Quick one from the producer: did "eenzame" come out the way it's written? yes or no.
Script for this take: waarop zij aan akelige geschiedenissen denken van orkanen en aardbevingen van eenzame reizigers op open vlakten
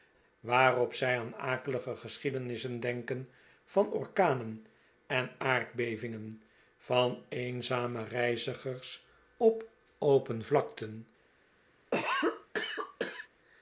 yes